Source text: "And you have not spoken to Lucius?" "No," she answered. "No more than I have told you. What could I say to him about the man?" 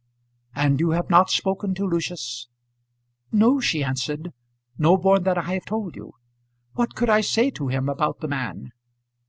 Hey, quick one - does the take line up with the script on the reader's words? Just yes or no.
yes